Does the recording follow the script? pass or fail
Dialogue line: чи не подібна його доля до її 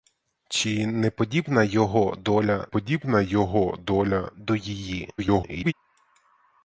fail